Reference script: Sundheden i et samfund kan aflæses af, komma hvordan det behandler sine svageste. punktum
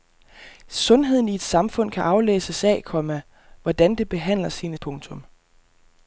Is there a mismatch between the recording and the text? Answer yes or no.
yes